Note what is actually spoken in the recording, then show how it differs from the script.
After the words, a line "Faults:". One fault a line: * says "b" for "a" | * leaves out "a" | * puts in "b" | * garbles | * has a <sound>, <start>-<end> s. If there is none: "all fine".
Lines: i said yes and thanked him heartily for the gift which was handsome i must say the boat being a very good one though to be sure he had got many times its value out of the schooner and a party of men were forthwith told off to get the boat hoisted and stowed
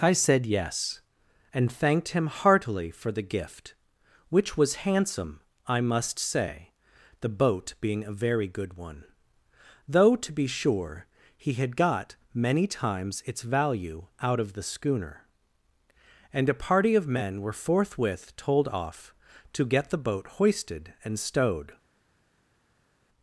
i said yes and thanked him heartily for the gift which was handsome i must say the boat being a very good one though to be sure he had got many times its value out of the schooner and a party of men were forthwith told off to get the boat hoisted and stowed
Faults:
all fine